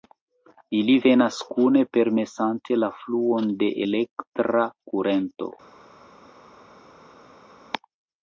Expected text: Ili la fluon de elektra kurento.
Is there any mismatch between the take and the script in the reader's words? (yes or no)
yes